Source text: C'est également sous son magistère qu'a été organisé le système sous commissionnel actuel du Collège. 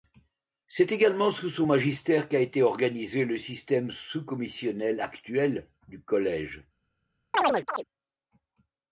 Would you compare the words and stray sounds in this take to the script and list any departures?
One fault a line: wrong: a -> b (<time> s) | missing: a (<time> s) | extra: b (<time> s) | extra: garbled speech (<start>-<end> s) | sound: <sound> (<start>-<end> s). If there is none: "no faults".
sound: chirp (7.3-7.8 s)